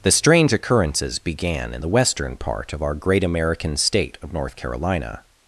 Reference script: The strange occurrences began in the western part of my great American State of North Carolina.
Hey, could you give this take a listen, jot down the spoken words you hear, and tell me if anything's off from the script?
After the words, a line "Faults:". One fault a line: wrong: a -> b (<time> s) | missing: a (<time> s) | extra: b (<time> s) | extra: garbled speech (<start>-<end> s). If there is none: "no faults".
The strange occurrences began in the western part of our great American State of North Carolina.
Faults:
wrong: my -> our (2.8 s)